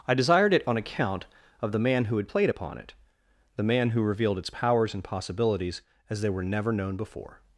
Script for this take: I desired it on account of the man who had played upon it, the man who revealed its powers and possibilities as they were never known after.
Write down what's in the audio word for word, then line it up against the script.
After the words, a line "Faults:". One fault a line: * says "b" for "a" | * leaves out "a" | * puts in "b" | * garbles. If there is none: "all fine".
I desired it on account of the man who had played upon it, the man who revealed its powers and possibilities as they were never known before.
Faults:
* says "before" for "after"